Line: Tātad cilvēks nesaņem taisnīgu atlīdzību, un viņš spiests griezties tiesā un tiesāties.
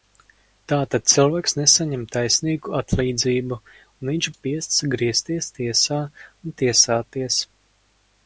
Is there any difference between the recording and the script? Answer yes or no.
no